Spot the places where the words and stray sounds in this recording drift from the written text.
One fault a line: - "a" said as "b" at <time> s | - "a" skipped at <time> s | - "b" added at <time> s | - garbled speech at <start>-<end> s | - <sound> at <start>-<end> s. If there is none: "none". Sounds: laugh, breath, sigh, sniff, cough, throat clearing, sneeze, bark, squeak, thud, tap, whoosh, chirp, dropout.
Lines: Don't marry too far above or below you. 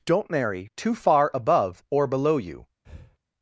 - breath at 2.8-3.2 s